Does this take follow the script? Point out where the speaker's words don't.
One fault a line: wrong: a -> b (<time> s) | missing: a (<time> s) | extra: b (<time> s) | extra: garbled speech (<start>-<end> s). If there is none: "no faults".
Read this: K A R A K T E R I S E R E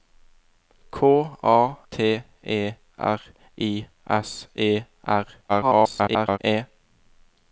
missing: R A K (1.8 s)
extra: garbled speech (5.5-6.4 s)